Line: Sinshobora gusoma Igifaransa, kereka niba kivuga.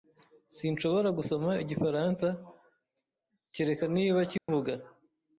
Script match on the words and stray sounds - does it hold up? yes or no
no